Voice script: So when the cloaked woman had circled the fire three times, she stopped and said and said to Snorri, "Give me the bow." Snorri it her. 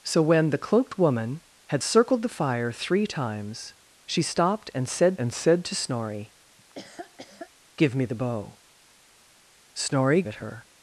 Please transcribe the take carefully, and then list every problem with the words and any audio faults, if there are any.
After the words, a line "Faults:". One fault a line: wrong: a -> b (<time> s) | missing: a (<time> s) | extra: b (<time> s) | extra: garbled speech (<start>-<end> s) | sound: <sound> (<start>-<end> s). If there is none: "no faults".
So when the cloaked woman had circled the fire three times, she stopped and said and said to Snorri, "Give me the bow." Snorri it her.
Faults:
sound: laugh (6.6-7.5 s)